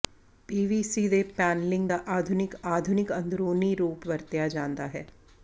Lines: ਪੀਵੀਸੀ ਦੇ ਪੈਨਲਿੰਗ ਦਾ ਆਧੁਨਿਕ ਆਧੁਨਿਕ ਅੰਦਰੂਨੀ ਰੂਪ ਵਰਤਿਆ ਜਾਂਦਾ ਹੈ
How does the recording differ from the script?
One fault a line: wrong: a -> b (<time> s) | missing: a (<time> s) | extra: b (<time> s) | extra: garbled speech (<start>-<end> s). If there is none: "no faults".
no faults